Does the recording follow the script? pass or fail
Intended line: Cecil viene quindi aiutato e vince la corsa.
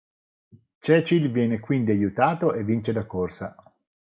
pass